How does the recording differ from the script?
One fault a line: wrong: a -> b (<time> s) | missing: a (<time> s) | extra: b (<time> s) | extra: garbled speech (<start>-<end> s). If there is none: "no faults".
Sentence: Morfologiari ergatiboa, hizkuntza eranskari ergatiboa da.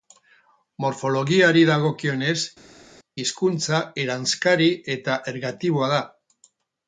wrong: ergatiboa -> dagokionez (1.7 s)
extra: eta (5.0 s)